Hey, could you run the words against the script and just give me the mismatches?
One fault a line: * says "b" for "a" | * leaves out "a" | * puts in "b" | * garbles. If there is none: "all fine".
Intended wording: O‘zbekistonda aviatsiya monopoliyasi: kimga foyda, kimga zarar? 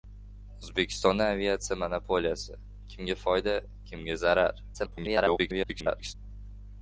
* garbles